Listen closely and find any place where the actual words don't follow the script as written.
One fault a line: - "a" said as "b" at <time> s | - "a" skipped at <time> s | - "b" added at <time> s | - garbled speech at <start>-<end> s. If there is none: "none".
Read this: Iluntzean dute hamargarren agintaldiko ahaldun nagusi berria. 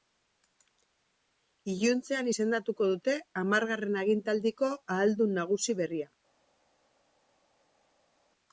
- "izendatuko" added at 2.3 s